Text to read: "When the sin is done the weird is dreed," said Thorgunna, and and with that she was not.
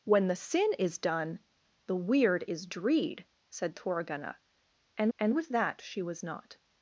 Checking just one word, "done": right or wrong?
right